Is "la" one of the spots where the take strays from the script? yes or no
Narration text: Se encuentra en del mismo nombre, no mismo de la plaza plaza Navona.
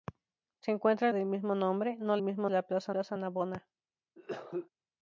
no